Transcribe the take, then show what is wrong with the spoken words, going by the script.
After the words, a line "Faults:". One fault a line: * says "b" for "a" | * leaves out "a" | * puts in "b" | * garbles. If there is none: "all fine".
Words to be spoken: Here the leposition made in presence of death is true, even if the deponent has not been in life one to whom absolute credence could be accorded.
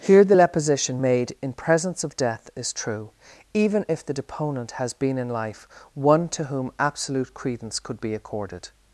Here the leposition made in presence of death is true, even if the deponent has been in life one to whom absolute credence could be accorded.
Faults:
* leaves out "not"